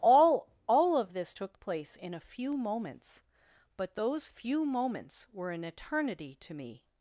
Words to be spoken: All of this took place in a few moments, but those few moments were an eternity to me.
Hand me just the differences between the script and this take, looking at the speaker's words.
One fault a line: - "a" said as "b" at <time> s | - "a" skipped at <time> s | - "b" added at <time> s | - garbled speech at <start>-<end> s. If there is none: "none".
- "all" added at 0.7 s